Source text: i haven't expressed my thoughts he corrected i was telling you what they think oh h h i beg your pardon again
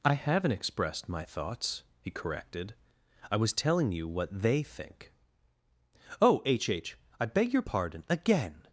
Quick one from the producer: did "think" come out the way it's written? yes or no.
yes